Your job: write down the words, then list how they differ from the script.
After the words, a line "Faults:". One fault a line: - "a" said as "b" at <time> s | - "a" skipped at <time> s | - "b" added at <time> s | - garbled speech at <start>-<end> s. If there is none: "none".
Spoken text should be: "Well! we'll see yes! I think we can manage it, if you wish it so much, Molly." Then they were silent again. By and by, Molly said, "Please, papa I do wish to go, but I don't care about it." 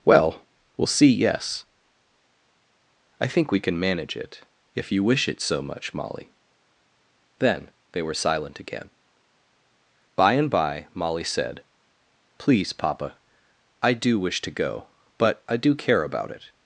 "Well! we'll see yes! I think we can manage it, if you wish it so much, Molly." Then they were silent again. By and by, Molly said, "Please, papa I do wish to go, but I do care about it."
Faults:
- "don't" said as "do" at 15.6 s